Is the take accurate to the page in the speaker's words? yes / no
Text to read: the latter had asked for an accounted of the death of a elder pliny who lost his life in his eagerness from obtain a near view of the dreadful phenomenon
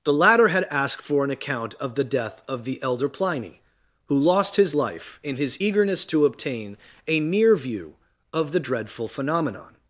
no